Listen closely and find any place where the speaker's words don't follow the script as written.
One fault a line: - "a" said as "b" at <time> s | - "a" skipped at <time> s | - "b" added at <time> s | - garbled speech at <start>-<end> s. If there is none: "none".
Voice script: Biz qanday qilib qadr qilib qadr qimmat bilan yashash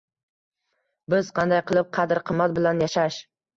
- "qilib qadr" skipped at 2.2 s